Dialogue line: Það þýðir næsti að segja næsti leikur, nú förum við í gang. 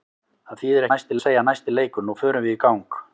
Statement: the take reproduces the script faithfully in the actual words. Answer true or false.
true